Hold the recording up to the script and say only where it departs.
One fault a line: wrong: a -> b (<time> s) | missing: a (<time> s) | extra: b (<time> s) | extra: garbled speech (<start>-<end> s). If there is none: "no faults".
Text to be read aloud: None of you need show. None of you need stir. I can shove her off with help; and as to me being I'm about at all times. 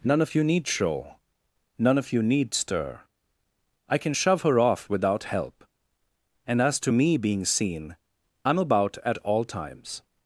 wrong: with -> without (4.9 s)
extra: seen (7.5 s)